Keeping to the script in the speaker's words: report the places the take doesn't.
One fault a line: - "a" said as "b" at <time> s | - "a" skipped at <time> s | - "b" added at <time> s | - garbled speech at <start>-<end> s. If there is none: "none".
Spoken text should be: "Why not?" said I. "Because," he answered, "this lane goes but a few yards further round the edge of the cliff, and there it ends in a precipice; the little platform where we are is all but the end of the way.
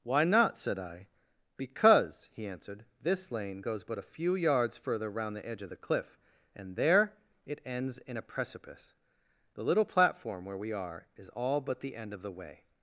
none